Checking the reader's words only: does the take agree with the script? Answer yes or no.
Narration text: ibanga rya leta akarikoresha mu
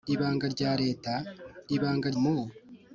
no